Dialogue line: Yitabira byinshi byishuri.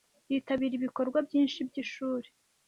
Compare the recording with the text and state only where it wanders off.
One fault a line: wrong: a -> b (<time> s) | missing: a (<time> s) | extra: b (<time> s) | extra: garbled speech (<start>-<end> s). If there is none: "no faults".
extra: ibikorwa (0.8 s)